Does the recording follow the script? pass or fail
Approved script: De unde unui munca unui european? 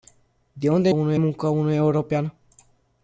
pass